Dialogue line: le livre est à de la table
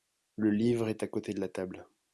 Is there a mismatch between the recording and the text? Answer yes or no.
yes